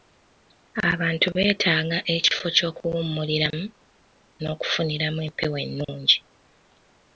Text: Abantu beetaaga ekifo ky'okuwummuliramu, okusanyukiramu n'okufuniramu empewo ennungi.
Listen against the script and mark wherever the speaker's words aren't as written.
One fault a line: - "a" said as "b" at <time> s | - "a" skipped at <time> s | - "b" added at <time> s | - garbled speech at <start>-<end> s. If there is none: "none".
- "okusanyukiramu" skipped at 3.6 s